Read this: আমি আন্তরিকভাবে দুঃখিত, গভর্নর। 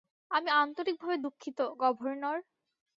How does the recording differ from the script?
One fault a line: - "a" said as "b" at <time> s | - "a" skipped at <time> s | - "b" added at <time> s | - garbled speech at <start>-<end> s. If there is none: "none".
none